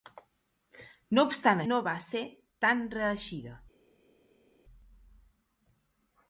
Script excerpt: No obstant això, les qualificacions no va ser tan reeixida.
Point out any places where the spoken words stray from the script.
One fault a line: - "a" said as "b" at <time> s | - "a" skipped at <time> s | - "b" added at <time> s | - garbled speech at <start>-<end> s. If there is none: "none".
- "això les qualificacions" skipped at 1.6 s